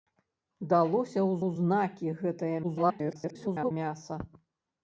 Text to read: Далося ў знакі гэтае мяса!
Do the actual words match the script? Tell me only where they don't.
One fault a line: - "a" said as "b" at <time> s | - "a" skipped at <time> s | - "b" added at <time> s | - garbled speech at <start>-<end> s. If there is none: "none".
- "ў" added at 1.4 s
- garbled speech at 2.6-3.7 s